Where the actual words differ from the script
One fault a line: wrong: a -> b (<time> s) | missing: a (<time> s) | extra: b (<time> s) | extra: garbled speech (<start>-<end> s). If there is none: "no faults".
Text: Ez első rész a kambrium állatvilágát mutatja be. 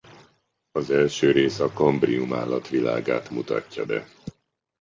wrong: Ez -> Az (0.7 s)